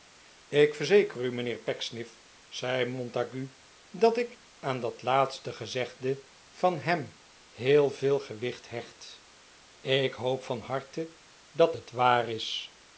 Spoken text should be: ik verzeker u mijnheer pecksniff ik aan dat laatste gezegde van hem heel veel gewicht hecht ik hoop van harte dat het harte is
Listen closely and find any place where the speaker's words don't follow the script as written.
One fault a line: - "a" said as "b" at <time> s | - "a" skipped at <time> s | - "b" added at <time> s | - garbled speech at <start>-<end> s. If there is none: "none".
- "zei montague dat" added at 2.5 s
- "harte" said as "waar" at 11.9 s